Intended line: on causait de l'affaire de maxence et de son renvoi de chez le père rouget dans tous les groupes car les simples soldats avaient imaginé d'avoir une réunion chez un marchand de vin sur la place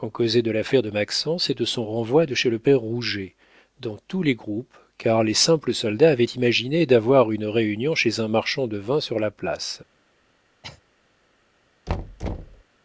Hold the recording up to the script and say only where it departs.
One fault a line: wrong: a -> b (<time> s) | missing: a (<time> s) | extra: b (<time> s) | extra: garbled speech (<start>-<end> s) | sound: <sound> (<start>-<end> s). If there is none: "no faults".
sound: cough (10.6-10.8 s)
sound: thud (11.9-12.6 s)